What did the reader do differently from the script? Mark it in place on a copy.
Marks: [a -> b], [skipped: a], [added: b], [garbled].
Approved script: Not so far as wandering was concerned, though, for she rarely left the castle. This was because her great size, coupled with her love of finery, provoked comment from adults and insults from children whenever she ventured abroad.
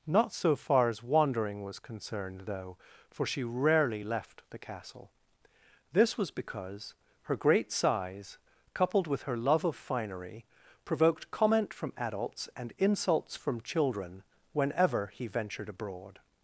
Not so far as wandering was concerned, though, for she rarely left the castle. This was because her great size, coupled with her love of finery, provoked comment from adults and insults from children whenever [she -> he] ventured abroad.